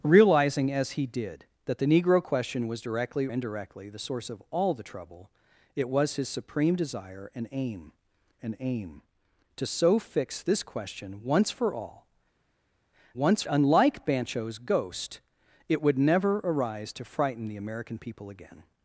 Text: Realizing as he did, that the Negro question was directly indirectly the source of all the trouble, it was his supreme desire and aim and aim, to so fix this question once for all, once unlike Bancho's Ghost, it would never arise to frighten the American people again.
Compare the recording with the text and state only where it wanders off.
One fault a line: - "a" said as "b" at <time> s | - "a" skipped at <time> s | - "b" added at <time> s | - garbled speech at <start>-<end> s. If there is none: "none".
none